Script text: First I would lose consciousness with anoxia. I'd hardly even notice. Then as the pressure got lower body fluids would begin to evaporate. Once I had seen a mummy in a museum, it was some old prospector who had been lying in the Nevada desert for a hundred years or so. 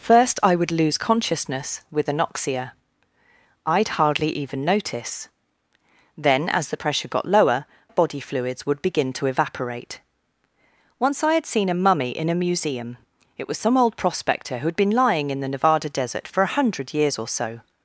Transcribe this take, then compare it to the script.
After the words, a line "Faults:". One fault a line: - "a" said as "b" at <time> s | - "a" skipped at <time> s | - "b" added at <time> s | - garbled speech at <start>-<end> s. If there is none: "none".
First I would lose consciousness with anoxia. I'd hardly even notice. Then as the pressure got lower body fluids would begin to evaporate. Once I had seen a mummy in a museum, it was some old prospector who had been lying in the Nevada desert for a hundred years or so.
Faults:
none